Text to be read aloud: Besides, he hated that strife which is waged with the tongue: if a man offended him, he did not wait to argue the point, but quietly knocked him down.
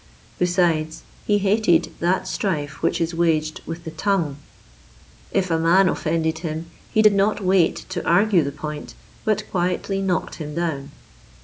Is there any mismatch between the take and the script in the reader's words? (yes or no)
no